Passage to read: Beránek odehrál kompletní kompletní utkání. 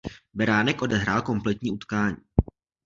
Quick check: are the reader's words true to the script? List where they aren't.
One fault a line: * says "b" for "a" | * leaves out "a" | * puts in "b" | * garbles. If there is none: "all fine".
* leaves out "kompletní"